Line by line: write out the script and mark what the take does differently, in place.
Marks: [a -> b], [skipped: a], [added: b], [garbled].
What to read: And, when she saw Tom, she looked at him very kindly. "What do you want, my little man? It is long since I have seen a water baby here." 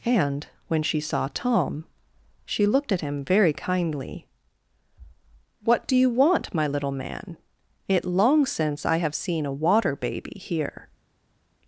And, when she saw Tom, she looked at him very kindly. "What do you want, my little man? It [skipped: is] long since I have seen a water baby here."